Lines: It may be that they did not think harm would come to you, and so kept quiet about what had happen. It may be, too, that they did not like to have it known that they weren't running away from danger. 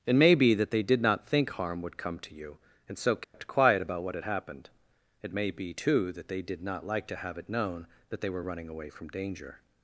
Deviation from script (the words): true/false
true